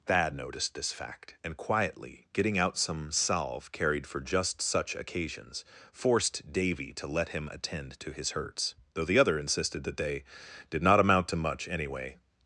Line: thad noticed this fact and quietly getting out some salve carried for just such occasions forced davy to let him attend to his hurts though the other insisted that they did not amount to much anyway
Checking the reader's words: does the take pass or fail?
pass